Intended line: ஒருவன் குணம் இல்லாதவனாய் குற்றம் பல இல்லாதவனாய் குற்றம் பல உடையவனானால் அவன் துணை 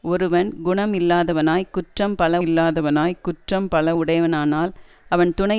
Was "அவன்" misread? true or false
false